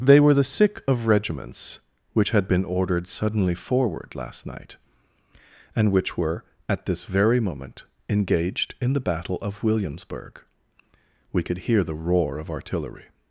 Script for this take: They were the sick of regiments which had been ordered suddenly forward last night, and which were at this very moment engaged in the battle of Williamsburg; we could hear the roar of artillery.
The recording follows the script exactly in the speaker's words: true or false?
true